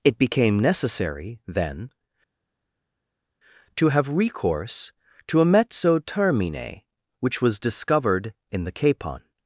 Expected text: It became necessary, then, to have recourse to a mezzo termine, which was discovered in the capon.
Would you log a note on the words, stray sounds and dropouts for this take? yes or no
no